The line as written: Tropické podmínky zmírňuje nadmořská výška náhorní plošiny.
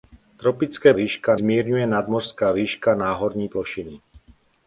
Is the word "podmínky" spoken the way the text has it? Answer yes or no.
no